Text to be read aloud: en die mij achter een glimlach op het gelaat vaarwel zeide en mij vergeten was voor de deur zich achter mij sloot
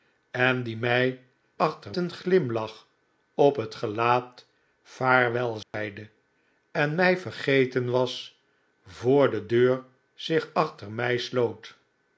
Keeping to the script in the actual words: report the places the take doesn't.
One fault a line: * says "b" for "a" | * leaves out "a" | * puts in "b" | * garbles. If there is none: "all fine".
all fine